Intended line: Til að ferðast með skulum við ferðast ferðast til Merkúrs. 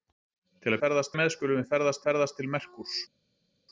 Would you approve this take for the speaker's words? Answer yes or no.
yes